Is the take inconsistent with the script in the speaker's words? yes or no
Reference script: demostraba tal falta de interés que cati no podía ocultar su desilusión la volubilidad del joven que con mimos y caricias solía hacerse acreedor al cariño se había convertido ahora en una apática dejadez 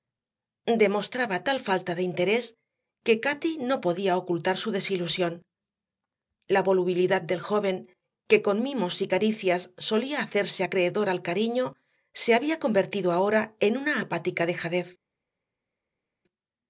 no